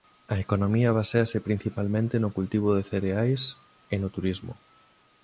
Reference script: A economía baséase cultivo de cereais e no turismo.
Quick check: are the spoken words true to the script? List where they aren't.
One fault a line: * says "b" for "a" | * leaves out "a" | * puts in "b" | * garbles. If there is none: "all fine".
* puts in "principalmente no"